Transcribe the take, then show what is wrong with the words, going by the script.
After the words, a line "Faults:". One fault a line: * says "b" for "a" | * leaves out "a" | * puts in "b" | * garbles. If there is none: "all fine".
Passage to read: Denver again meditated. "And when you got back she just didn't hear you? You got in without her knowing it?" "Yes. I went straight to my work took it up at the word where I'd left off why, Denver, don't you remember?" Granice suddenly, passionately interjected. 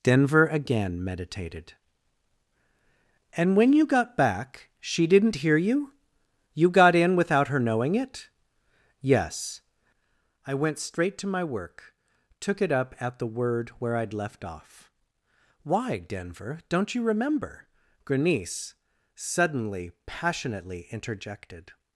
Denver again meditated. "And when you got back she didn't hear you? You got in without her knowing it?" "Yes. I went straight to my work took it up at the word where I'd left off why, Denver, don't you remember?" Granice suddenly, passionately interjected.
Faults:
* leaves out "just"